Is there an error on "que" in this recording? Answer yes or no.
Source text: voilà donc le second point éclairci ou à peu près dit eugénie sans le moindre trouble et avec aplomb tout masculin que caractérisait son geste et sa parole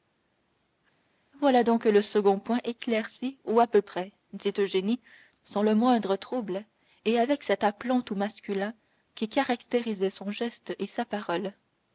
yes